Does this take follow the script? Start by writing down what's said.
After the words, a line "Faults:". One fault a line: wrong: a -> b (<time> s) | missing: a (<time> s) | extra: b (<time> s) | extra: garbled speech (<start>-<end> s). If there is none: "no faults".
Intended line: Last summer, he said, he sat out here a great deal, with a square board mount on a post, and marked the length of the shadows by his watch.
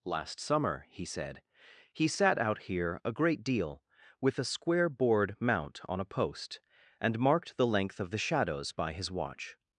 Last summer, he said, he sat out here a great deal, with a square board mount on a post, and marked the length of the shadows by his watch.
Faults:
no faults